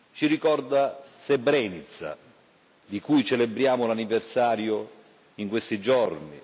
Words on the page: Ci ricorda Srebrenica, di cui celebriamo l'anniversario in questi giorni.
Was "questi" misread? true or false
false